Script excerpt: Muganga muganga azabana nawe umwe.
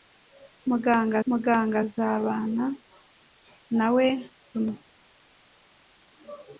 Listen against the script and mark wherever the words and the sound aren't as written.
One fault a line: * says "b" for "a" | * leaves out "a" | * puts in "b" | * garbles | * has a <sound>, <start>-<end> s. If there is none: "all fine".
all fine